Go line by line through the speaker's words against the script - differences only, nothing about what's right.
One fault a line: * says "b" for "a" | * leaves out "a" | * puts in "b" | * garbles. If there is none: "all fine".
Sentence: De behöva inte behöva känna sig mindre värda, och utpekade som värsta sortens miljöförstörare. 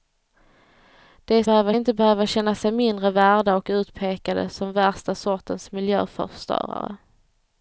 all fine